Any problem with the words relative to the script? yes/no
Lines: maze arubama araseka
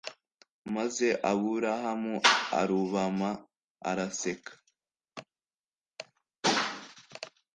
yes